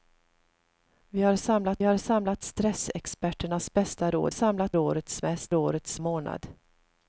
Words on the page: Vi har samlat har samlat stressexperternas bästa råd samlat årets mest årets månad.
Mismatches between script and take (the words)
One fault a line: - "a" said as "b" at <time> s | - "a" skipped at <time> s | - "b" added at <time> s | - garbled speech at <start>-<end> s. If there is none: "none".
none